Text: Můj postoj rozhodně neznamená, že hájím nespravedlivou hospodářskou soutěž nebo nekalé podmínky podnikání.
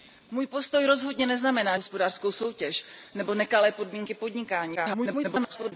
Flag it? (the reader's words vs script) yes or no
yes